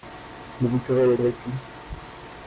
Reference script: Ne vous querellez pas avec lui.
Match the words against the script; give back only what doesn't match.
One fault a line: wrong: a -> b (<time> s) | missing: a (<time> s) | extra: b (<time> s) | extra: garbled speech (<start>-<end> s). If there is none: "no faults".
missing: pas (1.1 s)